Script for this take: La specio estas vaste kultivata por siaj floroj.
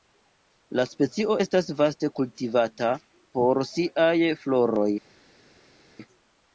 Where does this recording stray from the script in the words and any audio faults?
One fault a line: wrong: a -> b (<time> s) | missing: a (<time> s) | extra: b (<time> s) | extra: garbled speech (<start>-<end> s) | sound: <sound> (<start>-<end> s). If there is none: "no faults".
no faults